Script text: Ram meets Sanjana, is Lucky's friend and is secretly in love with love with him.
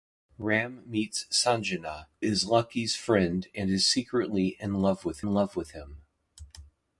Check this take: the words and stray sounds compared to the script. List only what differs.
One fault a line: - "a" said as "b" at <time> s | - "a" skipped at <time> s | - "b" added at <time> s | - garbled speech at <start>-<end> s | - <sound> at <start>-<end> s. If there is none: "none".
none